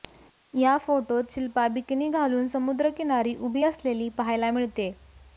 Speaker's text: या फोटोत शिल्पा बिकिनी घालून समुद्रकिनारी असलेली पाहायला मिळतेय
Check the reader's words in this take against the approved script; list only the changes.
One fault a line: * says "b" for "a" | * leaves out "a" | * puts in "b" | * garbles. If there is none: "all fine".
* puts in "उभी"